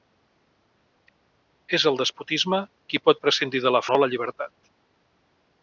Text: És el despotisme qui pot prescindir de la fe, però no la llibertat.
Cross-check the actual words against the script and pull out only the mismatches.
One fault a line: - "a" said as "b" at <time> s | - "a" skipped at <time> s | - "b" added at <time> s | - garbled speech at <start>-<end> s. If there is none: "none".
- "fe però" skipped at 3.8 s